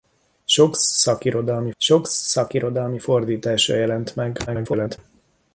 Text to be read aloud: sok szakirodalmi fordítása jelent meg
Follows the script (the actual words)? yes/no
no